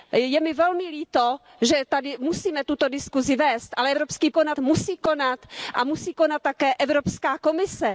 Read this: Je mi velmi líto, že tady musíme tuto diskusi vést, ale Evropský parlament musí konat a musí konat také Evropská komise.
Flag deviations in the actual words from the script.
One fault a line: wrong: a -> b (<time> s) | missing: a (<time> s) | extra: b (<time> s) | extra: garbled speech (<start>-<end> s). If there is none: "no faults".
wrong: parlament -> konat (4.3 s)